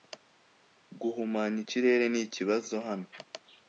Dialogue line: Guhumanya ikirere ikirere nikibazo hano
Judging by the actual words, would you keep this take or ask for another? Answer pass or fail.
fail